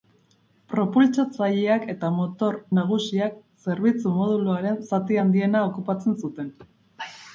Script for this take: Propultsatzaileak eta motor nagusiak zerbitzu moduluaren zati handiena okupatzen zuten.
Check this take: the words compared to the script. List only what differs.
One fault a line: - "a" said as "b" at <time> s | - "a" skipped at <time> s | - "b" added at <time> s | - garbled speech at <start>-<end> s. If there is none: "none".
none